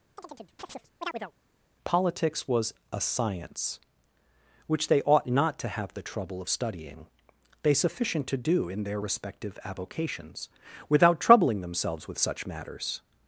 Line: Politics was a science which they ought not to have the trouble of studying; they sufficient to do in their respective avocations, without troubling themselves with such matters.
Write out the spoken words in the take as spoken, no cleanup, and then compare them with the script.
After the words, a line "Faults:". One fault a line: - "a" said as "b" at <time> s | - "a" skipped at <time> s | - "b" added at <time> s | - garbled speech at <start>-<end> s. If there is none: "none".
Politics was a science which they ought not to have the trouble of studying; they sufficient to do in their respective avocations, without troubling themselves with such matters.
Faults:
none